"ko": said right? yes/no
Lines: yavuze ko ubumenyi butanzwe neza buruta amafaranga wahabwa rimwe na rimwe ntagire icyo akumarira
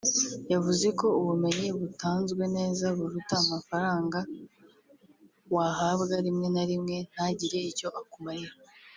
yes